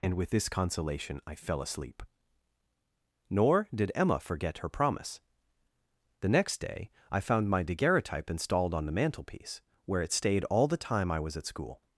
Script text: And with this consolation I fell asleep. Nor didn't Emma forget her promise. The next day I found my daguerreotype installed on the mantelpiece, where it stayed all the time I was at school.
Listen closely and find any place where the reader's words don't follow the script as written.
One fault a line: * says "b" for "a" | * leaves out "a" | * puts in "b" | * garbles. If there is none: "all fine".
* says "did" for "didn't"